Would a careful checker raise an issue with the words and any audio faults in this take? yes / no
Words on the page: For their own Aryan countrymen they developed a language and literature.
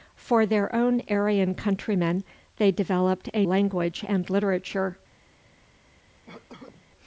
yes